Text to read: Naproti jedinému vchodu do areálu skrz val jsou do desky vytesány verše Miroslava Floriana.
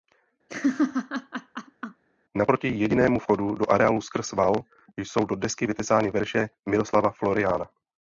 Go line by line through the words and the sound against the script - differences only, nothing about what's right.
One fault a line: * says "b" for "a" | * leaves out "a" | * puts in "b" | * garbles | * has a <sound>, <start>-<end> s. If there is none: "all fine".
* has a laugh, 0.5-2.0 s